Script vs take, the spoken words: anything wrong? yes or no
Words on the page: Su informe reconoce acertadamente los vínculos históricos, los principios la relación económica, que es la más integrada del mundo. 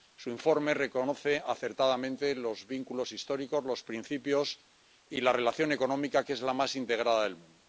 yes